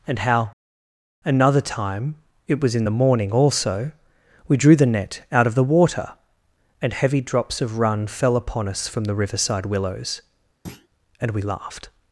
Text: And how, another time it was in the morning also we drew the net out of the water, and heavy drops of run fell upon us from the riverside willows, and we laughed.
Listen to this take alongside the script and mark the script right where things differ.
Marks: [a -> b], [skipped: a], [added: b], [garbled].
And how, another time it was in the morning also we drew the net out of the water, and heavy drops of run fell upon us from the riverside willows, and we laughed.